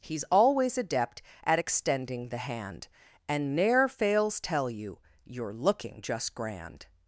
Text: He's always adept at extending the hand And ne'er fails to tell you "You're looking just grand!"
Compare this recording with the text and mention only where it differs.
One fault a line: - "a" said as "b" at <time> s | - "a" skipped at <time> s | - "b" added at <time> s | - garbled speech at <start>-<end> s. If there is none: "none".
- "to" skipped at 4.4 s